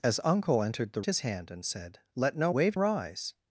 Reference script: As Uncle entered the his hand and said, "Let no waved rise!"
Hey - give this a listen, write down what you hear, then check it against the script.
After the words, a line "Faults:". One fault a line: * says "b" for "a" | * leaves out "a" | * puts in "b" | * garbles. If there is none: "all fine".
As Uncle entered the his hand and said, "Let no waved rise!"
Faults:
all fine